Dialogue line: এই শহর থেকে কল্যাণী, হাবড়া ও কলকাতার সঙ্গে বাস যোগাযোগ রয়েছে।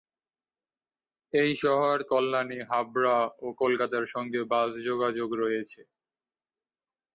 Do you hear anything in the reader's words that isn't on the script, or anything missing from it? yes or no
yes